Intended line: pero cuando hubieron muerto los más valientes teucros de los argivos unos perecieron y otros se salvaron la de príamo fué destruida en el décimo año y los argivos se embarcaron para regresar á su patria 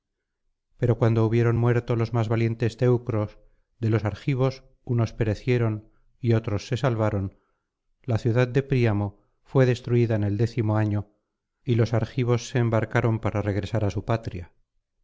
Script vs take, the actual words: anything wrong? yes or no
yes